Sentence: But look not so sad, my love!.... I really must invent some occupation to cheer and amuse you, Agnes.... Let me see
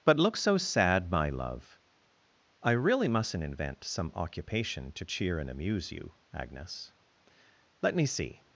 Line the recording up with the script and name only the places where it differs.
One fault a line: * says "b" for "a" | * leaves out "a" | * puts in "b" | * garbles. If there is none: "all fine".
* leaves out "not"
* says "mustn't" for "must"